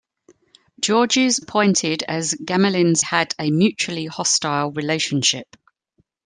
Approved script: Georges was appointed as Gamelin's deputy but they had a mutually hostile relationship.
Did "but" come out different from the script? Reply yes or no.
yes